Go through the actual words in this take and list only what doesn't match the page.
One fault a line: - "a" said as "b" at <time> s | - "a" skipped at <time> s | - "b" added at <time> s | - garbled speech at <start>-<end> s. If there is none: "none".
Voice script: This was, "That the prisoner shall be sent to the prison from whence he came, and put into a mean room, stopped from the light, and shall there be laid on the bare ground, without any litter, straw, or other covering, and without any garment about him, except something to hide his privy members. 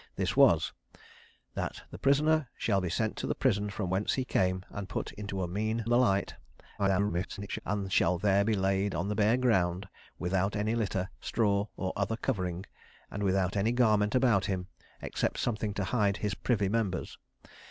- "room stopped from" skipped at 5.9 s
- garbled speech at 6.8-7.6 s